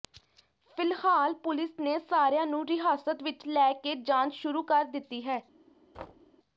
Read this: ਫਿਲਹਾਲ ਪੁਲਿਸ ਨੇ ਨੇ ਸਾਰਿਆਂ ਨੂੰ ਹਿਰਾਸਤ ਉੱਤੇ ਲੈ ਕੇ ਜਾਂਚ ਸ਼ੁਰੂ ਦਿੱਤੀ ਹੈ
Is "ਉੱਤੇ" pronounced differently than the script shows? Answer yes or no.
yes